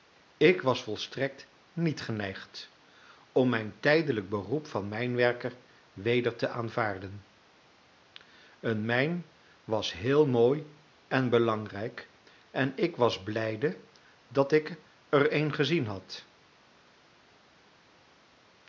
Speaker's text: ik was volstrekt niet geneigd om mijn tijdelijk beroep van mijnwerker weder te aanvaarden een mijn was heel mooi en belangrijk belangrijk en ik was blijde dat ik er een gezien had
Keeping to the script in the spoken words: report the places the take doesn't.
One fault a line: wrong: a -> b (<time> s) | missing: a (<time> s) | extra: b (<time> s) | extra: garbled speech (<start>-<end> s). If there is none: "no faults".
missing: belangrijk (12.1 s)